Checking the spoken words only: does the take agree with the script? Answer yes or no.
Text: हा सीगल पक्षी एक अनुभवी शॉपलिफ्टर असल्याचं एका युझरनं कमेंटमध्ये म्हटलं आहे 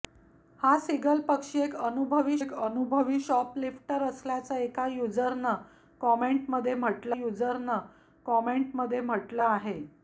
no